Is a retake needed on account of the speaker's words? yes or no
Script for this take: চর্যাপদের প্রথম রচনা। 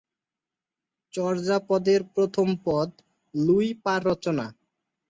yes